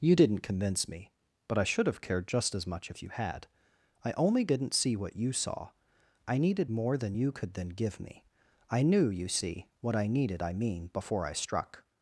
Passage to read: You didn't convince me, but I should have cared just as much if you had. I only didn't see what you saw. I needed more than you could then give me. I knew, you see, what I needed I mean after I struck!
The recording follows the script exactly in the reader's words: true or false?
false